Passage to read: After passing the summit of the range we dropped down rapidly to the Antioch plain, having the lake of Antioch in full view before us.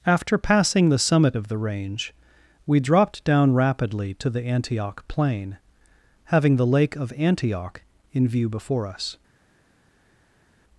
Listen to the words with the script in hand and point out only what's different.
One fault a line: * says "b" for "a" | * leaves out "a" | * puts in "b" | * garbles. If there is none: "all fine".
* leaves out "full"